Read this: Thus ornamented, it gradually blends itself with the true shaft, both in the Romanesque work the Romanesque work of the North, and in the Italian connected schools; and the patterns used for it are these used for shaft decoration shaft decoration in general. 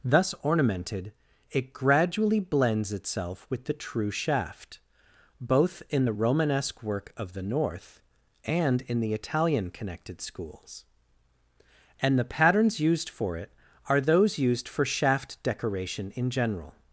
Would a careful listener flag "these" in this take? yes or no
yes